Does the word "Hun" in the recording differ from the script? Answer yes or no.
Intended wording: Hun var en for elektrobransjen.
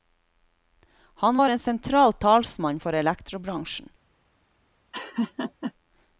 yes